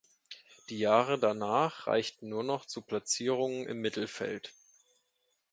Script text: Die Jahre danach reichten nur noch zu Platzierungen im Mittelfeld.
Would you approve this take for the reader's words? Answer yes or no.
yes